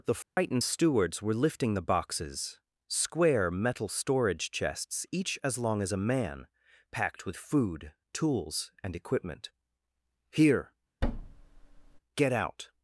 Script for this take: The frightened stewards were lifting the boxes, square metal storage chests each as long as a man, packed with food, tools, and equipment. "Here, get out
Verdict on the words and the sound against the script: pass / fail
fail